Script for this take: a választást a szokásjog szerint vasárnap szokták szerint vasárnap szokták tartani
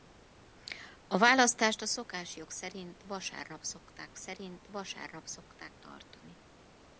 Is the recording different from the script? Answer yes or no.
no